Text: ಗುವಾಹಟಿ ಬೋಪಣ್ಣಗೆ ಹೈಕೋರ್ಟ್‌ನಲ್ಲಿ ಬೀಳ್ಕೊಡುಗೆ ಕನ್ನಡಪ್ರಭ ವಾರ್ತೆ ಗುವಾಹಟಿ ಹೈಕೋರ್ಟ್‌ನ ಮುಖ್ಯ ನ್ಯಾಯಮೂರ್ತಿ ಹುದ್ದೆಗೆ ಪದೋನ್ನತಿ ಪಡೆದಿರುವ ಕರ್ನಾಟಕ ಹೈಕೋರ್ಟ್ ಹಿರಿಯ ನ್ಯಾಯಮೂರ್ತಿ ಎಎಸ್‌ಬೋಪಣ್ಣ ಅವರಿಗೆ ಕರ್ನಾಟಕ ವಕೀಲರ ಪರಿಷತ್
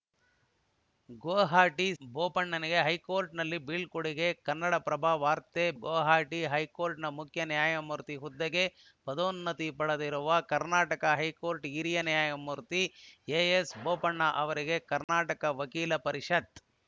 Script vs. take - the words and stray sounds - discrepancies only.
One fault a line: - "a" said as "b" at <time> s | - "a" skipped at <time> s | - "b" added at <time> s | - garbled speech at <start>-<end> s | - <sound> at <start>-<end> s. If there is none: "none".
- dropout at 15.0-15.1 s